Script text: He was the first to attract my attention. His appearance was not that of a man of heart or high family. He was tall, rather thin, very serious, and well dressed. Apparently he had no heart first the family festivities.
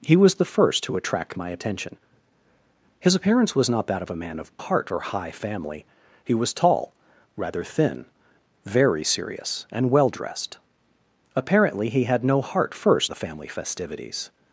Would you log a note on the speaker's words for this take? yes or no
no